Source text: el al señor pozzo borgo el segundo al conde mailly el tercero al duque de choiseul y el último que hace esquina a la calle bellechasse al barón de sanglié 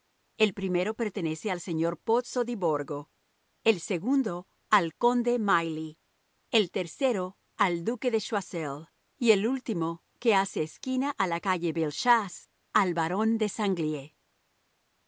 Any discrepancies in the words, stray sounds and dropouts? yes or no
yes